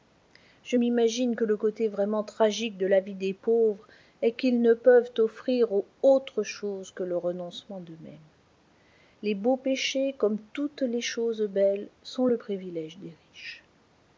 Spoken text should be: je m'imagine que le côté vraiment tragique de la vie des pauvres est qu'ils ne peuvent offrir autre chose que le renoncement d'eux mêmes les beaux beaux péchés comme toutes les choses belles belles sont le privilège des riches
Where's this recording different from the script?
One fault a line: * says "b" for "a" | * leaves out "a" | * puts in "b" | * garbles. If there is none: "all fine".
* leaves out "beaux"
* leaves out "belles"